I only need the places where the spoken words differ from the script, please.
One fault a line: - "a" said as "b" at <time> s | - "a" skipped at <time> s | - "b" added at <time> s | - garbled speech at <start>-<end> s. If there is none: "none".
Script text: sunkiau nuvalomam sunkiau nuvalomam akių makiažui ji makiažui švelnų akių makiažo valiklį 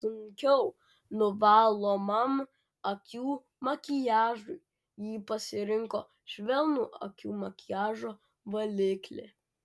- "sunkiau nuvalomam" skipped at 2.4 s
- "makiažui" said as "pasirinko" at 5.3 s